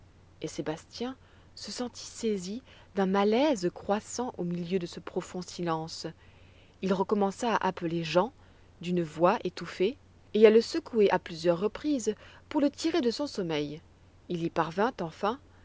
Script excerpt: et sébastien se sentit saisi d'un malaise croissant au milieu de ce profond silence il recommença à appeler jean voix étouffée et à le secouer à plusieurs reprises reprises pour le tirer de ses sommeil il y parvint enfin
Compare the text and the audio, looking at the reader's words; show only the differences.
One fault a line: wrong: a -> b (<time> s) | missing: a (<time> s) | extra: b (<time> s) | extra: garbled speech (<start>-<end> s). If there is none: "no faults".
extra: d'une (8.8 s)
missing: reprises (12.1 s)
wrong: ses -> son (13.1 s)